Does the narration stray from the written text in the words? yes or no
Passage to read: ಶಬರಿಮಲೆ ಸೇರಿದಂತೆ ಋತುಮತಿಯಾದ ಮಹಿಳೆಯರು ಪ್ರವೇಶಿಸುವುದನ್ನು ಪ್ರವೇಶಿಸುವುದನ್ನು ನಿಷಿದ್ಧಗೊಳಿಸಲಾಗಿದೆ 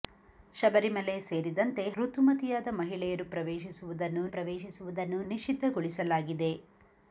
no